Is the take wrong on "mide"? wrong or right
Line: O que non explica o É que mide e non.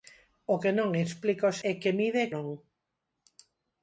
right